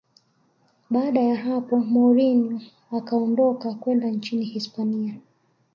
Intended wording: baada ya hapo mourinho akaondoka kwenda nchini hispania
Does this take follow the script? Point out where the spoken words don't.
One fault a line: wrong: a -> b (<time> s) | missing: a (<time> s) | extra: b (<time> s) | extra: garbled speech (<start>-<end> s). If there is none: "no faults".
no faults